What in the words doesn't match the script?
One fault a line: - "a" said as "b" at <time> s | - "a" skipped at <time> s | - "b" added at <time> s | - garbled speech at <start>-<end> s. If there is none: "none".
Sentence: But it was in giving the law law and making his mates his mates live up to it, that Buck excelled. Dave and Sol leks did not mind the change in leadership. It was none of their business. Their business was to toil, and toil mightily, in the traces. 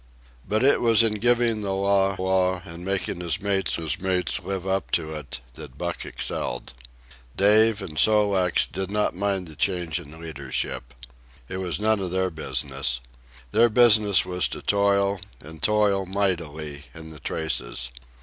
none